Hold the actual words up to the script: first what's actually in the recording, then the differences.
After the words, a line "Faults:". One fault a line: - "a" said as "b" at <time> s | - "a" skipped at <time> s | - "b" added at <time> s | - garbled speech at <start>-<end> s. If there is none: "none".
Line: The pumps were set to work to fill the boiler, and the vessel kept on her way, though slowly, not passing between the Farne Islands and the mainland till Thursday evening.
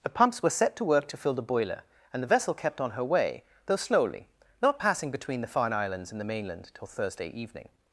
The pumps were set to work to fill the boiler, and the vessel kept on her way, though slowly, not passing between the Farne Islands and the mainland till Thursday evening.
Faults:
none